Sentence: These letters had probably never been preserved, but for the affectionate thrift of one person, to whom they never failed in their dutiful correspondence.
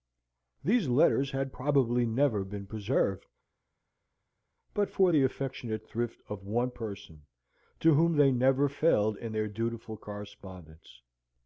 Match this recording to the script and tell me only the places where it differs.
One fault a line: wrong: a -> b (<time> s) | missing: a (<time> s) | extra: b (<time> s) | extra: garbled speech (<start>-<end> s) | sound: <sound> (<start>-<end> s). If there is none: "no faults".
no faults